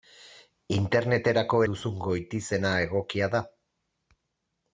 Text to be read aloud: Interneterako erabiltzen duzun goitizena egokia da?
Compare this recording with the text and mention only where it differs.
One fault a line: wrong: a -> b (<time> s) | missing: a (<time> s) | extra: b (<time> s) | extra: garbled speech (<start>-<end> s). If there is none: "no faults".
missing: erabiltzen (1.6 s)